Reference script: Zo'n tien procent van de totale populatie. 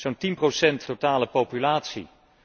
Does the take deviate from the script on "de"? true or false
true